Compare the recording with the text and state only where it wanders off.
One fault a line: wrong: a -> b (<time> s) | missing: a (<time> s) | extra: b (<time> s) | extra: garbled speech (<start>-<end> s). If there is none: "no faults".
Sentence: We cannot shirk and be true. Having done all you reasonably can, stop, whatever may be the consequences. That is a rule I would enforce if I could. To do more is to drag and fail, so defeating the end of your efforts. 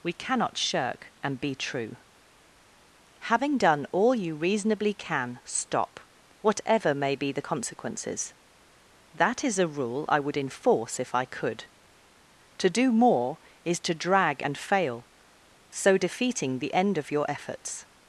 no faults